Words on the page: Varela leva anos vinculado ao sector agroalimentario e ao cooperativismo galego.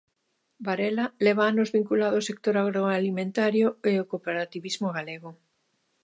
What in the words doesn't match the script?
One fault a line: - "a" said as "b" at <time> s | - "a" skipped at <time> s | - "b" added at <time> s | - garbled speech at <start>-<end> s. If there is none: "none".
none